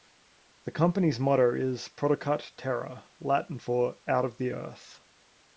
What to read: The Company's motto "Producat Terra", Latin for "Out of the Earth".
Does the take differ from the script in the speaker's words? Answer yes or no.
yes